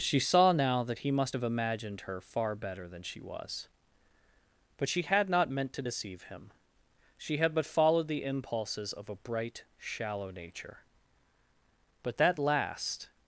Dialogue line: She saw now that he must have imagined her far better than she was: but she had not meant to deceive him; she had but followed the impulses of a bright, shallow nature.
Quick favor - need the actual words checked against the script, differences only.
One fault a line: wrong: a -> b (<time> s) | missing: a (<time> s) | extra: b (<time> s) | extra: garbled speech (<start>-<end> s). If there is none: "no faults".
extra: But that last (12.0 s)